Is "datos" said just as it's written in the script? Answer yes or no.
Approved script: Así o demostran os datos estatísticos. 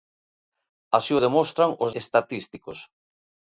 no